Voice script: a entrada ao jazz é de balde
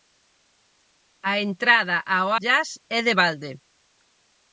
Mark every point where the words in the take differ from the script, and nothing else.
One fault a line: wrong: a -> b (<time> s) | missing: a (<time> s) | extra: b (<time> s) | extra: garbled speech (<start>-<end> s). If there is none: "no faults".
no faults